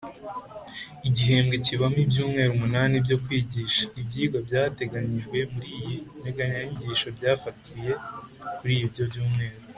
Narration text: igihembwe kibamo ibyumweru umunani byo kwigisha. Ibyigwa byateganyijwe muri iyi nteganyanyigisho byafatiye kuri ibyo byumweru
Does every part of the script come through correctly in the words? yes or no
yes